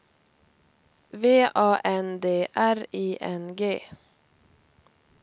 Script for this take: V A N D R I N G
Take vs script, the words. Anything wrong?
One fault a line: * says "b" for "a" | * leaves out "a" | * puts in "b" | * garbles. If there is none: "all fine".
all fine